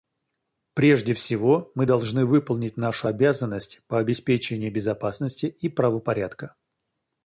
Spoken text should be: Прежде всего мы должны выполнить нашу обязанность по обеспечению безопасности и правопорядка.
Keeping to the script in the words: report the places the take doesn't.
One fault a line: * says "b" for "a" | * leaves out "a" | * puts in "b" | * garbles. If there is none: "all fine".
all fine